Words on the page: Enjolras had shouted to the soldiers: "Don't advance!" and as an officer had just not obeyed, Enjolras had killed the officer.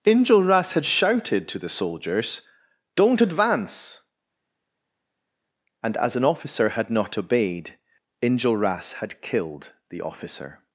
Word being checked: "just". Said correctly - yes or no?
no